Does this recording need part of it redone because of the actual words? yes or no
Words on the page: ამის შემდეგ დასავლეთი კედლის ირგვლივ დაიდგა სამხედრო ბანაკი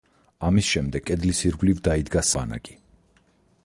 yes